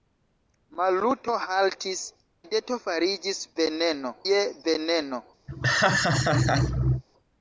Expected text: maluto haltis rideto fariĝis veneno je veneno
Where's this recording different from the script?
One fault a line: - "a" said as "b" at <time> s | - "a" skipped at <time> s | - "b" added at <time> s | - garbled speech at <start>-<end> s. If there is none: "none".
none